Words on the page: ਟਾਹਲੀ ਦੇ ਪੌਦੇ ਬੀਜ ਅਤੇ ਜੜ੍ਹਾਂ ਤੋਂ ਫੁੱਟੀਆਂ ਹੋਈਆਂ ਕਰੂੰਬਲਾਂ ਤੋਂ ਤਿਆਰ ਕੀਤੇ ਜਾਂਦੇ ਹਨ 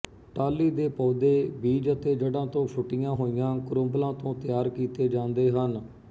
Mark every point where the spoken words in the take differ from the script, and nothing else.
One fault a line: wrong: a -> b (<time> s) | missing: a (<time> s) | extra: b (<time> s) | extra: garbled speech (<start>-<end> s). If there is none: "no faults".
no faults